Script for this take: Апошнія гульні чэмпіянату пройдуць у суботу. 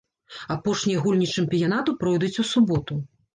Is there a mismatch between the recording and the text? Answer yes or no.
no